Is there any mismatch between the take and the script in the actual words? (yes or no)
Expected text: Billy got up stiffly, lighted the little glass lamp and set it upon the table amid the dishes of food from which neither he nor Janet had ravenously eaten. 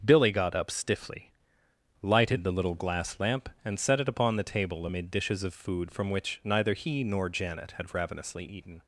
yes